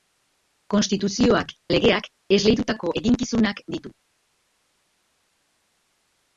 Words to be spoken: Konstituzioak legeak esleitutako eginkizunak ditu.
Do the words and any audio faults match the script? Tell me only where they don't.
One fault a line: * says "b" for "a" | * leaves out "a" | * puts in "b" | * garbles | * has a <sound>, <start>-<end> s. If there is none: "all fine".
all fine